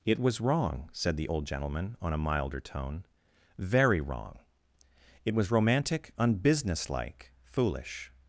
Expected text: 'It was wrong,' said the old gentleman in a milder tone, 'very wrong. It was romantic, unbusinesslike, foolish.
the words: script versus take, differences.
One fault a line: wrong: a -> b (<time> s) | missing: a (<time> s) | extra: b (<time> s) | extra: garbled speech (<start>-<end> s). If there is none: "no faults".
wrong: in -> on (2.0 s)